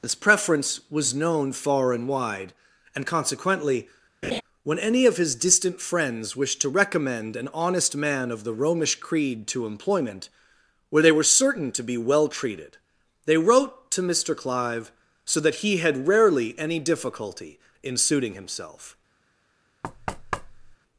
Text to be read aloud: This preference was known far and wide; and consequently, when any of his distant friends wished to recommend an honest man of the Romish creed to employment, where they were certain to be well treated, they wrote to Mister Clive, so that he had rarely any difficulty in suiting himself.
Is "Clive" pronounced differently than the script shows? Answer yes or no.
no